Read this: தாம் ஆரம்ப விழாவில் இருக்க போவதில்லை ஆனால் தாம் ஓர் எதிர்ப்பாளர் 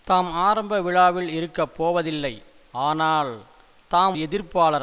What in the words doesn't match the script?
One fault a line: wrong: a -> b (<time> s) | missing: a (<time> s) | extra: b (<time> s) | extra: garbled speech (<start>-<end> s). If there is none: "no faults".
missing: ஓர் (4.2 s)